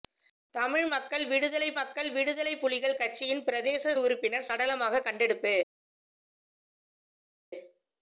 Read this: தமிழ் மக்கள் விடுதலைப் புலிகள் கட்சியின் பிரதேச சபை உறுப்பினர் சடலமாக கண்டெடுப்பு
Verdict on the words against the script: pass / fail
fail